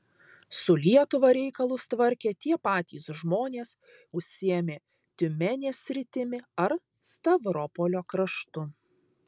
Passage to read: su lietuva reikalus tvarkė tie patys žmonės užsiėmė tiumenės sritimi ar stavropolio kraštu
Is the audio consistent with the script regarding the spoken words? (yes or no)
yes